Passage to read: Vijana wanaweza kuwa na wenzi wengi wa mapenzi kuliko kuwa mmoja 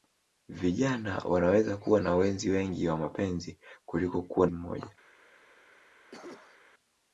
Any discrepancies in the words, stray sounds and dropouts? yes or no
yes